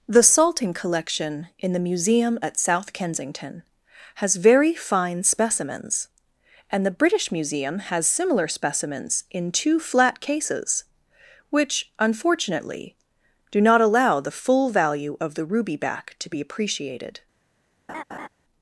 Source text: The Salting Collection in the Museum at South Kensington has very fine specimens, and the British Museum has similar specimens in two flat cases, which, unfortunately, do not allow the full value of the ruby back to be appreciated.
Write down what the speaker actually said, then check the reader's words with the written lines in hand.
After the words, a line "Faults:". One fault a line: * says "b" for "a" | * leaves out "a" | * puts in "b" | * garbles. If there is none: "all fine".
The Salting Collection in the Museum at South Kensington has very fine specimens, and the British Museum has similar specimens in two flat cases, which, unfortunately, do not allow the full value of the ruby back to be appreciated.
Faults:
all fine